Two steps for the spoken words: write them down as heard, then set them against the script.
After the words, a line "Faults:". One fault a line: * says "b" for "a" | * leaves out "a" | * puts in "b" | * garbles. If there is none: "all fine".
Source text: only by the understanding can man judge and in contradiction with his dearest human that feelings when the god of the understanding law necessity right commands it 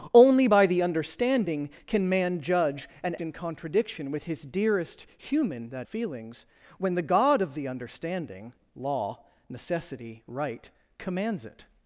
only by the understanding can man judge and in contradiction with his dearest human that feelings when the god of the understanding law necessity right commands it
Faults:
all fine